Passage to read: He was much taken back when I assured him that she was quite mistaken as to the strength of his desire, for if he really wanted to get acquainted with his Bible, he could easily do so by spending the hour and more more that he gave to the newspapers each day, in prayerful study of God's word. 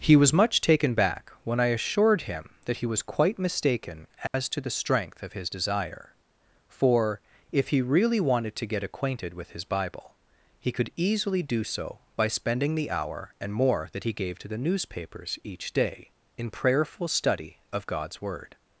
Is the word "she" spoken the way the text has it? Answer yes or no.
no